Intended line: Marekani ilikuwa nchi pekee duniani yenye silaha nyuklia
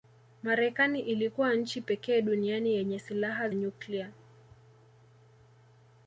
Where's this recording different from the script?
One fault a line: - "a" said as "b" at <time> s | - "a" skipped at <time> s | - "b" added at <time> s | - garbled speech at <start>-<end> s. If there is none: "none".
none